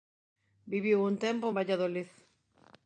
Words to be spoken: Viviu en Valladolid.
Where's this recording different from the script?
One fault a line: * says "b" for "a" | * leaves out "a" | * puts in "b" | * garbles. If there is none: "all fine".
* puts in "un tempo"